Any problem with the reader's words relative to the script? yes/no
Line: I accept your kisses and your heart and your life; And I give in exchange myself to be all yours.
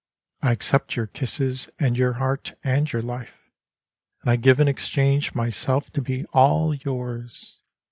no